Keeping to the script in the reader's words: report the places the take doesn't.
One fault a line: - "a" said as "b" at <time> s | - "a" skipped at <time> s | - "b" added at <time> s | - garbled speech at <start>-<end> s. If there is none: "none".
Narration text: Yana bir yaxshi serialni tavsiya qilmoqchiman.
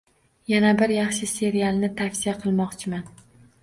none